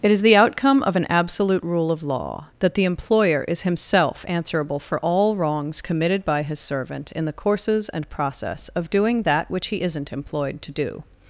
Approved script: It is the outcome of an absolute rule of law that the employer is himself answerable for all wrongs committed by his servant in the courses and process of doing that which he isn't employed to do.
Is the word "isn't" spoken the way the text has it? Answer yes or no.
yes